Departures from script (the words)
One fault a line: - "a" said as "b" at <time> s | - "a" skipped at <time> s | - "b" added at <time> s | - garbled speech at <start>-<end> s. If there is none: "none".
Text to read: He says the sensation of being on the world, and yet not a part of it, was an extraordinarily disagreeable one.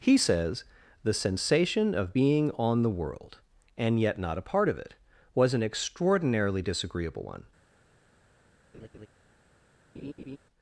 none